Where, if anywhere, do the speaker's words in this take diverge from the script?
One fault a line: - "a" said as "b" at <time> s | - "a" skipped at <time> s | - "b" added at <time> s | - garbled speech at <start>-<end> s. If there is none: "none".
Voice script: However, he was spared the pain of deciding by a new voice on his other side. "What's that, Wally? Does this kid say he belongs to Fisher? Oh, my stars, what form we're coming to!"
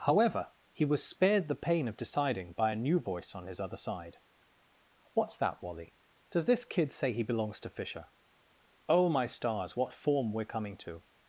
none